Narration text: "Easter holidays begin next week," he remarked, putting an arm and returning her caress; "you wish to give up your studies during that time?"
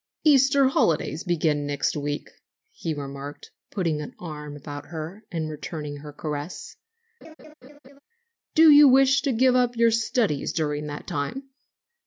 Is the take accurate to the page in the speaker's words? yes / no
no